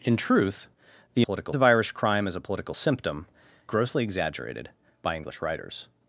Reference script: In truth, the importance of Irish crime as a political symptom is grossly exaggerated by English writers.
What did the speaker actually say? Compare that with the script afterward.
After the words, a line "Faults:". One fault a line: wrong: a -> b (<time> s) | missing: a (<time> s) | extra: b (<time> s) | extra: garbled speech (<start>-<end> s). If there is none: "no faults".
In truth, the political of Irish crime as a political symptom grossly exaggerated by English writers.
Faults:
wrong: importance -> political (1.2 s)
missing: is (3.3 s)